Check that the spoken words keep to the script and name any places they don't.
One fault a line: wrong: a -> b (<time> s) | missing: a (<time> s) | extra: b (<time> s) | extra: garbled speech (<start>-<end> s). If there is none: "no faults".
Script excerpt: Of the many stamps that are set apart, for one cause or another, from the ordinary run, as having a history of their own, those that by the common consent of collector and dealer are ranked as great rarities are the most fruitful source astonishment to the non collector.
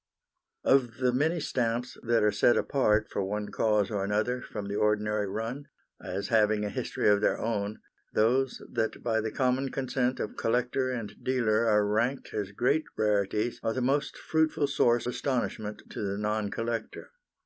no faults